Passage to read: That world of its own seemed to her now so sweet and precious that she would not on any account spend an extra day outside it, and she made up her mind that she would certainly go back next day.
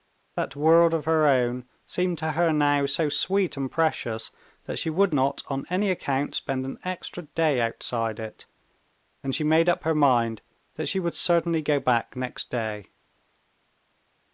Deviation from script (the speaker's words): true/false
true